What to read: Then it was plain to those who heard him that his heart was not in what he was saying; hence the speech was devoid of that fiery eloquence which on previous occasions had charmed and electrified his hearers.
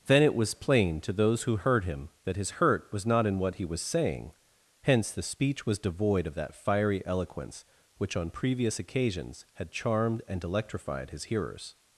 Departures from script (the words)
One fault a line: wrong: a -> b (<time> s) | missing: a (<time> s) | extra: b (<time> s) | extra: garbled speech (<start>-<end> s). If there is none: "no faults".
wrong: heart -> hurt (2.6 s)